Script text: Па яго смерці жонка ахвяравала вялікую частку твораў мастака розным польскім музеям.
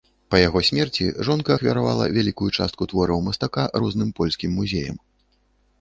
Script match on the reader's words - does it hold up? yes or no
yes